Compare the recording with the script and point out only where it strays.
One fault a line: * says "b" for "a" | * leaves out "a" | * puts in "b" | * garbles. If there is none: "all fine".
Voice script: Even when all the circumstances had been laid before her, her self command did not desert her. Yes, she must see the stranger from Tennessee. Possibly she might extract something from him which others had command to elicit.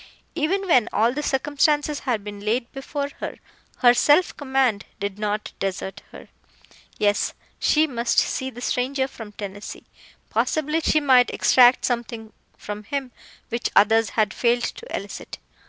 * says "failed" for "command"